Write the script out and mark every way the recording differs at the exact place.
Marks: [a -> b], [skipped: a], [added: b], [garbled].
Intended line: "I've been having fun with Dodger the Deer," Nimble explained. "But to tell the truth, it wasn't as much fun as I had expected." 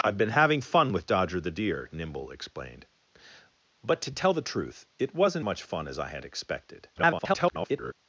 "I've been having fun with Dodger the Deer," Nimble explained. "But to tell the truth, it wasn't [skipped: as] much fun as I had expected." [garbled]